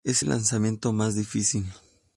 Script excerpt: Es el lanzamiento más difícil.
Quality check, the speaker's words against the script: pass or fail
pass